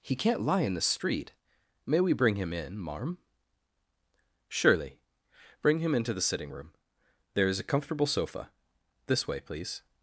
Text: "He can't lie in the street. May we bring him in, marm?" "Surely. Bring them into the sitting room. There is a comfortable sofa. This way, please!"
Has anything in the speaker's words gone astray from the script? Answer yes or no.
yes